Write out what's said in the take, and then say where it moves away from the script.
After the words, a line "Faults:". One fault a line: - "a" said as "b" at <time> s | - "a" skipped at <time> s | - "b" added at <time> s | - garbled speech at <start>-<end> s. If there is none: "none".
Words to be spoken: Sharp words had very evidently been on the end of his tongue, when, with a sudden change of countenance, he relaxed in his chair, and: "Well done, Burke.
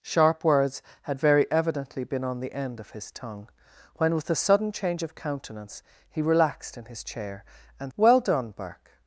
Sharp words had very evidently been on the end of his tongue, when, with a sudden change of countenance, he relaxed in his chair, and: "Well done, Burke.
Faults:
none